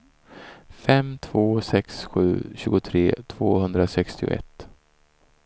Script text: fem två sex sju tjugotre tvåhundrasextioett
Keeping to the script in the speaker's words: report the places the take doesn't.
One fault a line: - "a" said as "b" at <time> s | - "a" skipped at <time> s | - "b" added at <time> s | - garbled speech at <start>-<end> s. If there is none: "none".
none